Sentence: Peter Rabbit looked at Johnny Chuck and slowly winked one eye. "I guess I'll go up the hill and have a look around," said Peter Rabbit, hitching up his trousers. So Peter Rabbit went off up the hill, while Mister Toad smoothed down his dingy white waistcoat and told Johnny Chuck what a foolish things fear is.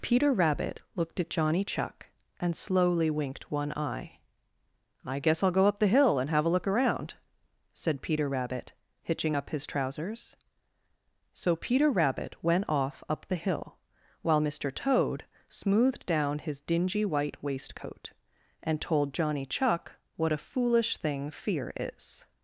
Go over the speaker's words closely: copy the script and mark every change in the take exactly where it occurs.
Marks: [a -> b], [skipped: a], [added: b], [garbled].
Peter Rabbit looked at Johnny Chuck and slowly winked one eye. "I guess I'll go up the hill and have a look around," said Peter Rabbit, hitching up his trousers. So Peter Rabbit went off up the hill, while Mister Toad smoothed down his dingy white waistcoat and told Johnny Chuck what a foolish [things -> thing] fear is.